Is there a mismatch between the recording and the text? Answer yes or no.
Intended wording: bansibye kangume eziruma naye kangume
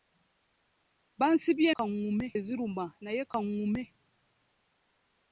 no